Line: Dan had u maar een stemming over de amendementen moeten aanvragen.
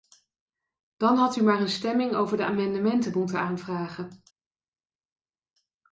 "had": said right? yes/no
yes